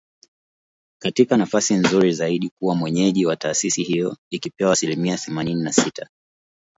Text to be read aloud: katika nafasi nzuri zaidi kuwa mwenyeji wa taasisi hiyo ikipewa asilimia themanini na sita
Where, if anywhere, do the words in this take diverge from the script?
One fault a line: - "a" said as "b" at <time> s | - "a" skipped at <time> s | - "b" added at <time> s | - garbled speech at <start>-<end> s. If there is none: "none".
none